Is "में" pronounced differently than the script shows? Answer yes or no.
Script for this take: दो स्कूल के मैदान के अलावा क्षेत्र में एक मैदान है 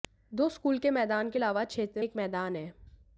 yes